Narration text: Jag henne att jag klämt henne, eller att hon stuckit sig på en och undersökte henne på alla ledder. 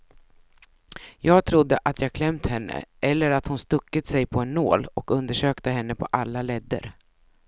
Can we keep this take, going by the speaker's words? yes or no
no